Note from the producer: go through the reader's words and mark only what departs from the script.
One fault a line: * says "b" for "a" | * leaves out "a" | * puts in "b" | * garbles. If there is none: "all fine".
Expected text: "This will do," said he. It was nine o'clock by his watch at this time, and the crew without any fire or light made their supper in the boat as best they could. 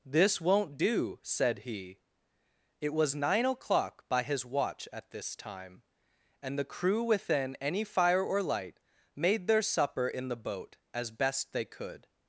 * says "won't" for "will"
* says "within" for "without"